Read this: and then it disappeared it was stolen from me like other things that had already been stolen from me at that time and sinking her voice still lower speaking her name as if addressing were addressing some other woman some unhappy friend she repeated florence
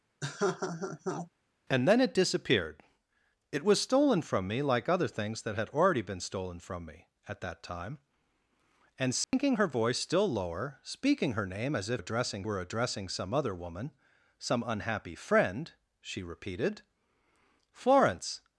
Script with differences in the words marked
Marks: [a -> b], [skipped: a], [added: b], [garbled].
and then it disappeared it was stolen from me like other things that had already been stolen from me at that time and sinking her voice still lower speaking her name as if addressing were addressing some other woman some unhappy friend she repeated florence